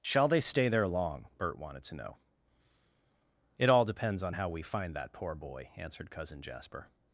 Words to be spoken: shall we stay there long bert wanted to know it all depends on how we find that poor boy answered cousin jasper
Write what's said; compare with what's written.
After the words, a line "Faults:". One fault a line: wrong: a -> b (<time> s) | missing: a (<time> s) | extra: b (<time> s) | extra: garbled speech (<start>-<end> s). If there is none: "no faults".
shall they stay there long bert wanted to know it all depends on how we find that poor boy answered cousin jasper
Faults:
wrong: we -> they (0.3 s)